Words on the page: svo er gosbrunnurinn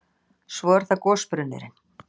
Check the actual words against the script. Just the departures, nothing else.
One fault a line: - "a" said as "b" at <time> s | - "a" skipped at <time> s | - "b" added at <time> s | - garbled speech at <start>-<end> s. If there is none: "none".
- "það" added at 0.9 s